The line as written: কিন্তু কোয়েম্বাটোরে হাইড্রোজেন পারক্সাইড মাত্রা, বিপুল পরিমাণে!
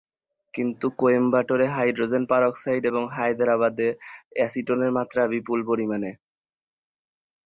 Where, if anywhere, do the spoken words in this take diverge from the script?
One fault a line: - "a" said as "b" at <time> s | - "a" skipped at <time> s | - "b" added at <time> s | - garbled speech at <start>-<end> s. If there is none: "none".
- "এবং হায়দ্রাবাদে অ্যাসিটোনের" added at 2.9 s